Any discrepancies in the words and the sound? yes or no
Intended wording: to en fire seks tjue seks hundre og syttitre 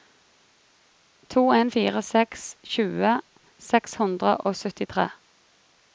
no